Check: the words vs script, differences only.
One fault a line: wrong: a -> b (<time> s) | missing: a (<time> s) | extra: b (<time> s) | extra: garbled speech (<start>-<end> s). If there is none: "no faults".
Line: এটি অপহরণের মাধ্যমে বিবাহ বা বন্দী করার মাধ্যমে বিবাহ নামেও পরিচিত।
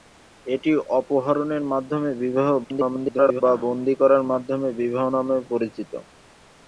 extra: garbled speech (2.6-3.4 s)